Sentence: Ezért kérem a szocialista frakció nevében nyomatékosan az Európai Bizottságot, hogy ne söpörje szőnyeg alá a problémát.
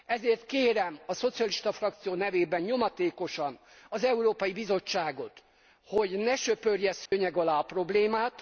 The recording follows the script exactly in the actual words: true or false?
true